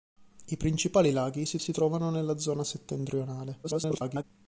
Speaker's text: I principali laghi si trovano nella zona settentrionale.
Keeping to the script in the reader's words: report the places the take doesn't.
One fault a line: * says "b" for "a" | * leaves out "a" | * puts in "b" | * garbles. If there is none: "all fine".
* puts in "si"
* garbles